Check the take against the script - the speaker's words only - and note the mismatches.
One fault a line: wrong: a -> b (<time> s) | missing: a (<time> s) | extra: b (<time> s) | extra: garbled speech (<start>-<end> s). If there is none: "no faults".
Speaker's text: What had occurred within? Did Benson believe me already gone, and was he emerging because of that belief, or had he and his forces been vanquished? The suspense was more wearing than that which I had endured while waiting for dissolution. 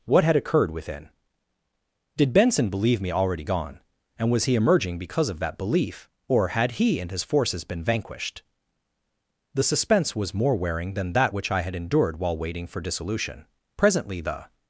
extra: Presently the (13.8 s)